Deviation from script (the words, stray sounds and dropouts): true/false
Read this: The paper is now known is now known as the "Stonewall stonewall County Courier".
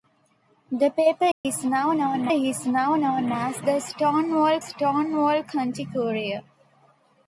true